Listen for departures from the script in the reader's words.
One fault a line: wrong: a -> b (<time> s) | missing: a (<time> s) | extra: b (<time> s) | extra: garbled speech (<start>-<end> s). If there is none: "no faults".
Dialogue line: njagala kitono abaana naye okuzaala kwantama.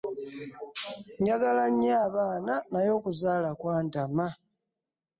wrong: kitono -> nnyo (1.7 s)